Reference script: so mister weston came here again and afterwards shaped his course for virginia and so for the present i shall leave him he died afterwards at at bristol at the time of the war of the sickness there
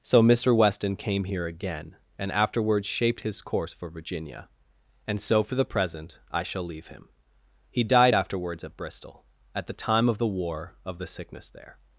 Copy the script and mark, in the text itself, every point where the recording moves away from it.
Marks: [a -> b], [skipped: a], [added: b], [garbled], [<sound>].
so mister weston came here again and afterwards shaped his course for virginia and so for the present i shall leave him he died afterwards at [skipped: at] bristol at the time of the war of the sickness there